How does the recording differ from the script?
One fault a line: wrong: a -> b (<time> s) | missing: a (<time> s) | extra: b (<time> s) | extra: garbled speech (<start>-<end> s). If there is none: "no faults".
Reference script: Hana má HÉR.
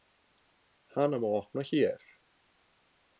extra: opna (1.4 s)